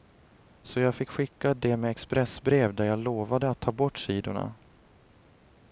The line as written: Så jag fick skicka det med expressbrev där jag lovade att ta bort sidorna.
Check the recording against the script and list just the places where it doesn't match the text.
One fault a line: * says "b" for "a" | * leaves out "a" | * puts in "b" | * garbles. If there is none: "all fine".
all fine